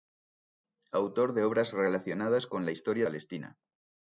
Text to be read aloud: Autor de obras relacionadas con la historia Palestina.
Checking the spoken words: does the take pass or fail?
pass